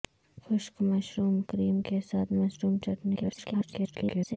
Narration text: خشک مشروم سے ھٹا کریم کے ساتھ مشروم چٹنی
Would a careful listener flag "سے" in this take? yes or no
yes